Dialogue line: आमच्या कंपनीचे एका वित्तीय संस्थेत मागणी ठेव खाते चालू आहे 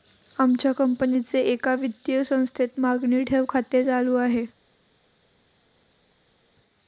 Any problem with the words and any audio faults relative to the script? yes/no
no